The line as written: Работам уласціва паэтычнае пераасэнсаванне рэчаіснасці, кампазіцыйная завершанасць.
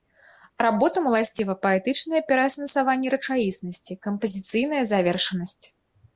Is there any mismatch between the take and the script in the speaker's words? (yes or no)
no